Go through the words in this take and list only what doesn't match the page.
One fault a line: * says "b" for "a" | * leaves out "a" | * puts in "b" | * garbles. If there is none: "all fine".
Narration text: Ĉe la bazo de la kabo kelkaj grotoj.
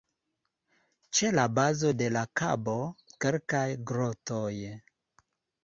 all fine